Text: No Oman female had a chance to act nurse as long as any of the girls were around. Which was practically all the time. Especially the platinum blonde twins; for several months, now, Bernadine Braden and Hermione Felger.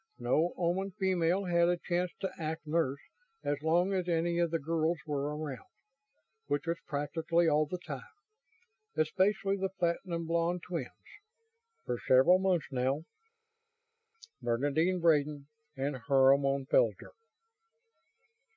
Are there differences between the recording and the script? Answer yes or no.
no